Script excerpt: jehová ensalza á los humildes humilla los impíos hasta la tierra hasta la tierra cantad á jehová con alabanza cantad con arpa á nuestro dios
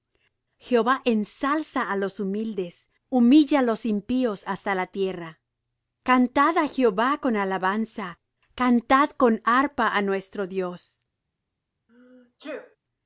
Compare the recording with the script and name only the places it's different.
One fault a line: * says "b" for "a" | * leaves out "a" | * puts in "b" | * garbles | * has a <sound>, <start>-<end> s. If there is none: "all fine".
* leaves out "hasta la tierra"
* has a sneeze, 11.9-12.8 s